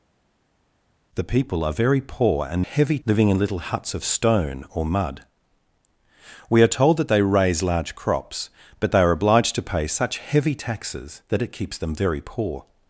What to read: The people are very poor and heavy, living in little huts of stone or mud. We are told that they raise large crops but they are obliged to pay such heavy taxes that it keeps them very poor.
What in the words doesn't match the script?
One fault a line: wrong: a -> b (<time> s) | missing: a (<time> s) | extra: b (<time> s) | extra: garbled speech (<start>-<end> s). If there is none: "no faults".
no faults